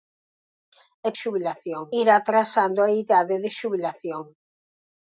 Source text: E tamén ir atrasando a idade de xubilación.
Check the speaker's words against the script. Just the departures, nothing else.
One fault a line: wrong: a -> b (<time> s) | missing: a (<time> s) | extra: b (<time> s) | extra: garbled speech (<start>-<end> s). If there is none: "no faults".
wrong: tamén -> xubilación (1.2 s)